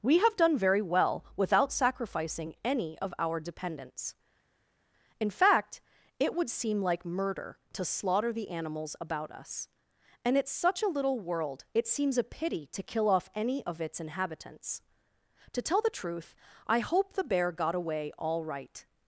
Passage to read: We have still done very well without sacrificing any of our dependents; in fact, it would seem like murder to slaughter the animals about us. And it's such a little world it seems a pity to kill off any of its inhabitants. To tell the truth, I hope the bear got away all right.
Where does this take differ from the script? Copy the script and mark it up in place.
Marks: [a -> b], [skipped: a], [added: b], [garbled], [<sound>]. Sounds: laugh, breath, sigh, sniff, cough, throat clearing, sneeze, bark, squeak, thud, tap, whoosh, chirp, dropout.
We have [skipped: still] done very well without sacrificing any of our dependents; in fact, it would seem like murder to slaughter the animals about us. And it's such a little world it seems a pity to kill off any of its inhabitants. To tell the truth, I hope the bear got away all right.